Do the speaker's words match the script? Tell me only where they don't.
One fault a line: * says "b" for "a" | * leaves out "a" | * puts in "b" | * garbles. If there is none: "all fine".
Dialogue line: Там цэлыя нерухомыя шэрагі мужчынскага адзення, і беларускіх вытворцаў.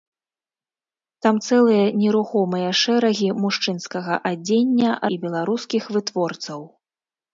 all fine